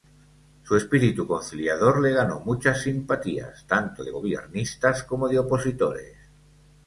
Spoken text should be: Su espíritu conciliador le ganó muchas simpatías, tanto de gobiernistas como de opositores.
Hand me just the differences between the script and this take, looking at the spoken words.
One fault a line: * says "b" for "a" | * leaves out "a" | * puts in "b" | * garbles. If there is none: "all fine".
all fine